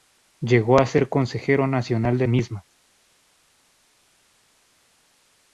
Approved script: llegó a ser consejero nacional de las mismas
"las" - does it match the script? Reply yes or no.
no